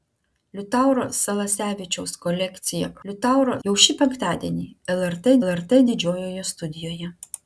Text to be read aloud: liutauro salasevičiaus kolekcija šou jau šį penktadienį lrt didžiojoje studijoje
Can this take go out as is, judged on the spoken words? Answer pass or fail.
fail